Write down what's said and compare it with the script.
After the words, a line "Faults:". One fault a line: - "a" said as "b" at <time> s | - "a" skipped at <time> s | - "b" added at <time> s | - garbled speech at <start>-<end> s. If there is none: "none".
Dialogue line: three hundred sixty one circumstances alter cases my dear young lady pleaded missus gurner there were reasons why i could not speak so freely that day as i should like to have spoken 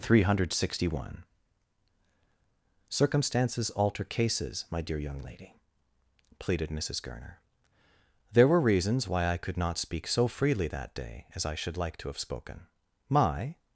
three hundred sixty one circumstances alter cases my dear young lady pleaded missus gurner there were reasons why i could not speak so freely that day as i should like to have spoken my
Faults:
- "my" added at 13.1 s